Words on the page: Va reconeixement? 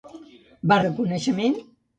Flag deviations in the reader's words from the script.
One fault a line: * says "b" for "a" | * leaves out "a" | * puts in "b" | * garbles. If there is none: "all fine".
all fine